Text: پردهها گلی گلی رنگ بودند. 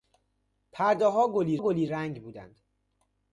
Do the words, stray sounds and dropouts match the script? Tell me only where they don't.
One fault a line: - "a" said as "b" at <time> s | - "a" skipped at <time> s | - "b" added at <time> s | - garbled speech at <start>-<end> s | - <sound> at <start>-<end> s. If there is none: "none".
none